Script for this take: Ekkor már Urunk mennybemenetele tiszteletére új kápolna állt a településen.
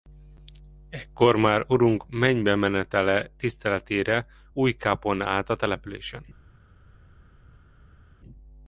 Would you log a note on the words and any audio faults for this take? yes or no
no